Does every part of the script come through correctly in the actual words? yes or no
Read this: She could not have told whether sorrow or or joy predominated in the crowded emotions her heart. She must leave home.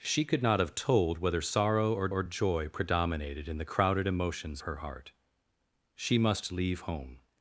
yes